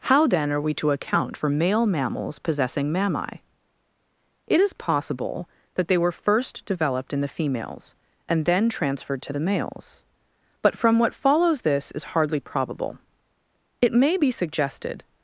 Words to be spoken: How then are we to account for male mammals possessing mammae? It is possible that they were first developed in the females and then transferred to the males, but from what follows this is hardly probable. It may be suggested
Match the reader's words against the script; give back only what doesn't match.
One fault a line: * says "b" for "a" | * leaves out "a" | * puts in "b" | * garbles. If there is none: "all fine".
all fine